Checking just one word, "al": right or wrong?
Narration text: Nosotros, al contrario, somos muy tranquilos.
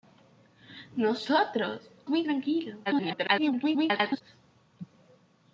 wrong